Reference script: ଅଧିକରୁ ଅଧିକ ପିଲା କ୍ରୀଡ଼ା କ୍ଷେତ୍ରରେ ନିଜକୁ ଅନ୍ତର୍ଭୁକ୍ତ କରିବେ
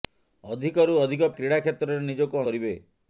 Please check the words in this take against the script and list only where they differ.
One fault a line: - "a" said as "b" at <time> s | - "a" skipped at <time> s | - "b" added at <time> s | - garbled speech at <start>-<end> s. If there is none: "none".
- "ପିଲା" skipped at 1.3 s
- "ଅନ୍ତର୍ଭୁକ୍ତ" skipped at 2.4 s